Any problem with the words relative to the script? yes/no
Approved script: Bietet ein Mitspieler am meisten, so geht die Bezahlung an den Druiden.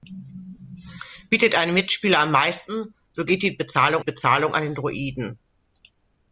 yes